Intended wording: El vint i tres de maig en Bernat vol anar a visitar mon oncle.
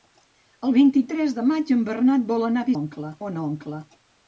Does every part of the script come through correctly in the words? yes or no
no